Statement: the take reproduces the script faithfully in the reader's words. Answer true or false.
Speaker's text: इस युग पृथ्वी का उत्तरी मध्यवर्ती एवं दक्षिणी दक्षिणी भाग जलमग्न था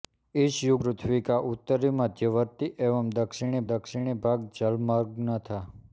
true